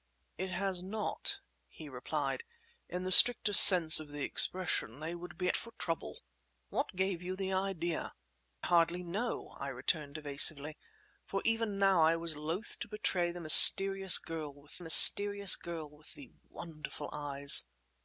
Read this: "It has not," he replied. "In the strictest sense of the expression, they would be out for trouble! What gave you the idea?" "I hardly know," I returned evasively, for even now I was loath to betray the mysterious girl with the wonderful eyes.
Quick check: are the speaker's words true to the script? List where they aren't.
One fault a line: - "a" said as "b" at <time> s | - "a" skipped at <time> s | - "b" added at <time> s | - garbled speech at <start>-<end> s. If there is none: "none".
- "out" skipped at 5.5 s
- "I" skipped at 8.1 s
- "mysterious girl with" added at 14.8 s